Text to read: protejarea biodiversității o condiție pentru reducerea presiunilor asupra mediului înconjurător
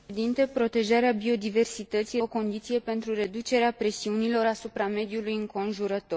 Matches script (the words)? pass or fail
pass